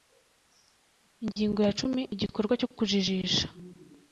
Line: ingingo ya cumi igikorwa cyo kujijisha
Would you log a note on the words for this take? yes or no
no